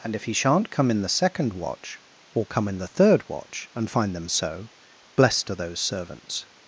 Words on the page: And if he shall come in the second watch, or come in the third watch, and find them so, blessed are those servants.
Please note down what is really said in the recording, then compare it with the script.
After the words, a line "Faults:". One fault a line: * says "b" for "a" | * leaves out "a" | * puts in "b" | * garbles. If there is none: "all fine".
And if he shan't come in the second watch, or come in the third watch, and find them so, blessed are those servants.
Faults:
* says "shan't" for "shall"